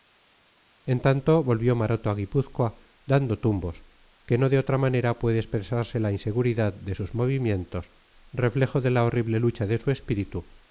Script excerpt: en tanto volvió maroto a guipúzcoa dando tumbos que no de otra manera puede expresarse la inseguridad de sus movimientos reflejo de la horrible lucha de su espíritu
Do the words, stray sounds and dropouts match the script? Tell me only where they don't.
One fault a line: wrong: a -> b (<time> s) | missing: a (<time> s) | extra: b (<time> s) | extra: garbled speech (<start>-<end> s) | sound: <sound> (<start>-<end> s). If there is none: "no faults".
no faults